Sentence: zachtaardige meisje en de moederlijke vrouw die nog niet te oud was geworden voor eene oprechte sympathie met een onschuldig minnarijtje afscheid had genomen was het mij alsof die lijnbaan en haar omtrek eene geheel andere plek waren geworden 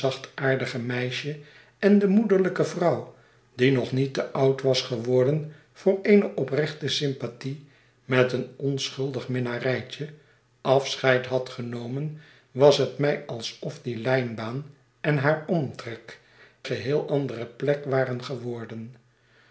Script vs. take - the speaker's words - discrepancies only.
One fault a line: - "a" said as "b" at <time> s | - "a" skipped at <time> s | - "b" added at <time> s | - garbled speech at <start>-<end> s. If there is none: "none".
- "eene" skipped at 16.2 s